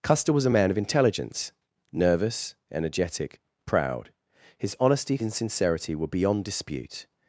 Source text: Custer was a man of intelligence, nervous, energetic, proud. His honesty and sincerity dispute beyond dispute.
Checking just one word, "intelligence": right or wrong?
right